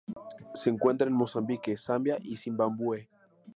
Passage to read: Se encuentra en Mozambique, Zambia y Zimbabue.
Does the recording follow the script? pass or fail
pass